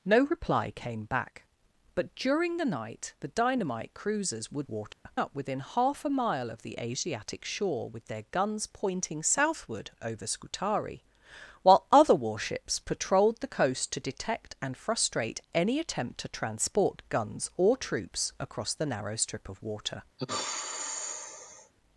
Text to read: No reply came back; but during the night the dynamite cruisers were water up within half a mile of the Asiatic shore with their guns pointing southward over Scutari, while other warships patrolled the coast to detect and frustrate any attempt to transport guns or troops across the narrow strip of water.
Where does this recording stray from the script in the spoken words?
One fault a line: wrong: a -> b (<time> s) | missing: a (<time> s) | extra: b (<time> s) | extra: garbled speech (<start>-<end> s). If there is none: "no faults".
no faults